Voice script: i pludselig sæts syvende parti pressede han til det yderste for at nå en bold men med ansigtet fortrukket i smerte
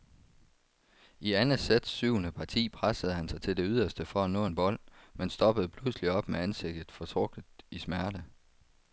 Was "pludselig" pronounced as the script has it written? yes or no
no